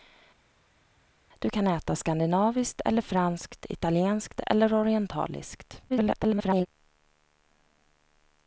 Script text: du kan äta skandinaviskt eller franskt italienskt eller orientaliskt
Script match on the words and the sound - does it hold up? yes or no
no